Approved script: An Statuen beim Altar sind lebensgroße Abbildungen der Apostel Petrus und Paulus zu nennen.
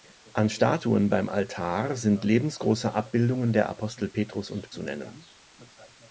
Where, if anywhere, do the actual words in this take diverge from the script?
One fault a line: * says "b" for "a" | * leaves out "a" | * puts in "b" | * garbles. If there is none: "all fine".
* leaves out "Paulus"